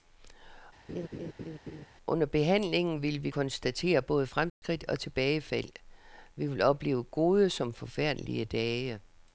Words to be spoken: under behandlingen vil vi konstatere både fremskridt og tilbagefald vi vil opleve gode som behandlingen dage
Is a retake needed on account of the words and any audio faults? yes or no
yes